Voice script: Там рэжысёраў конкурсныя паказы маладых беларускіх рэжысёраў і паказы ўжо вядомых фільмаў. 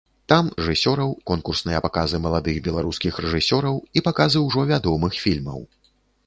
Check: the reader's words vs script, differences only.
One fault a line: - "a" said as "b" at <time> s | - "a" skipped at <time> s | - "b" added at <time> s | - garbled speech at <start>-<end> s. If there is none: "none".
none